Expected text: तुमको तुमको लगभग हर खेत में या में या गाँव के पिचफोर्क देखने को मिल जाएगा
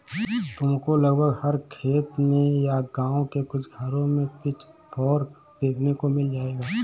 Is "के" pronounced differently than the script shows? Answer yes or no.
yes